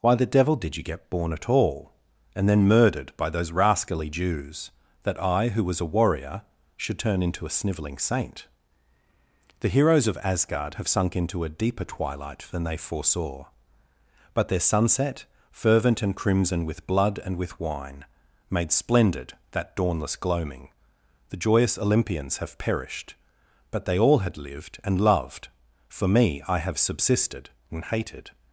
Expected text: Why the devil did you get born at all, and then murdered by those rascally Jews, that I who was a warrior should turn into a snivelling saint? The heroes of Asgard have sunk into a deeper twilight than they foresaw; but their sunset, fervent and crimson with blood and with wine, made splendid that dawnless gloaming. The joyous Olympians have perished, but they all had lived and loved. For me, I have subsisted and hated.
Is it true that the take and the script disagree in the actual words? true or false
false